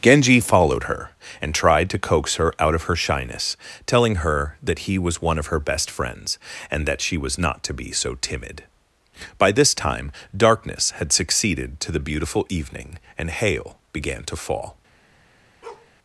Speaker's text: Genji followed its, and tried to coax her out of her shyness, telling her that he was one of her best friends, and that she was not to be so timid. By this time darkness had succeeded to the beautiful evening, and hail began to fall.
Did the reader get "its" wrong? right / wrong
wrong